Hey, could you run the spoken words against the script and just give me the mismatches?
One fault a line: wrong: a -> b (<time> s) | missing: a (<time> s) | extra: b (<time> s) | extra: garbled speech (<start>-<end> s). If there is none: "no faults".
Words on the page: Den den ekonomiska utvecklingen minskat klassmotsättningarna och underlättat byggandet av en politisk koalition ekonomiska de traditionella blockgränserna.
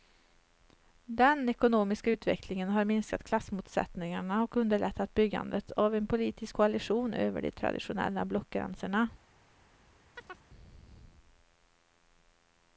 missing: den (1.5 s)
extra: har (2.7 s)
wrong: ekonomiska -> över (7.1 s)